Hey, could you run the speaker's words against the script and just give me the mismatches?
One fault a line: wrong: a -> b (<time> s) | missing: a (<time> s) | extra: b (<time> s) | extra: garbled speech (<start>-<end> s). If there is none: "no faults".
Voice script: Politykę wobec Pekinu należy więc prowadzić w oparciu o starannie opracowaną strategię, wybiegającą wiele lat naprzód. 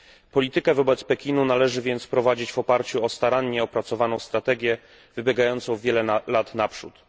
no faults